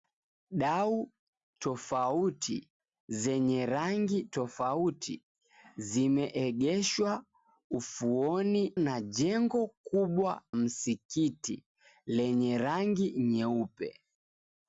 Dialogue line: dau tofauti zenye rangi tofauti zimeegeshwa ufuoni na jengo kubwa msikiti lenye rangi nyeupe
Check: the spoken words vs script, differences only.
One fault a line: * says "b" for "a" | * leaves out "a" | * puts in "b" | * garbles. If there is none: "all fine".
all fine